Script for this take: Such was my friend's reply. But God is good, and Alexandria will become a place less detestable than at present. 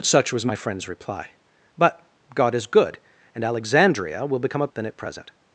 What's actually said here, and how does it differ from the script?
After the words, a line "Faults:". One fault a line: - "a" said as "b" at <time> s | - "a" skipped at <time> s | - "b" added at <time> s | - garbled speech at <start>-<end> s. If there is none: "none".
Such was my friend's reply. But God is good, and Alexandria will become a than at present.
Faults:
- "place less detestable" skipped at 4.7 s